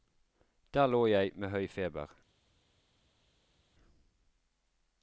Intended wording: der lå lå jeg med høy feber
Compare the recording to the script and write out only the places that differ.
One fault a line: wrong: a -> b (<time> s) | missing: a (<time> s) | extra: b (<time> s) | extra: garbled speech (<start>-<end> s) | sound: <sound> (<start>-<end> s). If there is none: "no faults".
missing: lå (1.1 s)